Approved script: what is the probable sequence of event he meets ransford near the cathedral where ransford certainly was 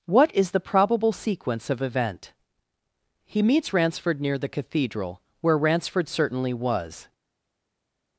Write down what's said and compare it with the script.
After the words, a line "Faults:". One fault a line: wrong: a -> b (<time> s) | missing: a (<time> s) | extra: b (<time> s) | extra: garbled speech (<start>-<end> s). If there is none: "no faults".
what is the probable sequence of event he meets ransford near the cathedral where ransford certainly was
Faults:
no faults